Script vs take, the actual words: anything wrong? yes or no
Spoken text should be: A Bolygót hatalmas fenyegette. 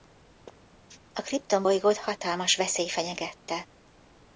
yes